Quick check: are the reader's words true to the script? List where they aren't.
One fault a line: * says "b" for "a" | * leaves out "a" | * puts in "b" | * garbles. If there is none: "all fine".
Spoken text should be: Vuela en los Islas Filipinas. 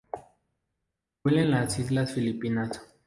* says "las" for "los"